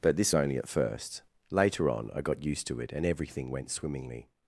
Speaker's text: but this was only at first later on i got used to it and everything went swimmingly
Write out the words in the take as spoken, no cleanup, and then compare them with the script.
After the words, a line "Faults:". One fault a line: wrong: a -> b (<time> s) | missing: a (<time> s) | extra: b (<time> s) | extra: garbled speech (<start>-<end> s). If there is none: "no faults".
but this only at first later on i got used to it and everything went swimmingly
Faults:
missing: was (0.3 s)